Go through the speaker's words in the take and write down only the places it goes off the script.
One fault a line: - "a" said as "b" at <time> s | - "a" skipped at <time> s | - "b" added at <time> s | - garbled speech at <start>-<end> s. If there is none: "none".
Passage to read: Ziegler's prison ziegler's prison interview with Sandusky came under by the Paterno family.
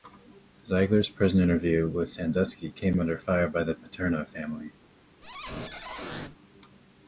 - "ziegler's prison" skipped at 1.4 s
- "fire" added at 3.2 s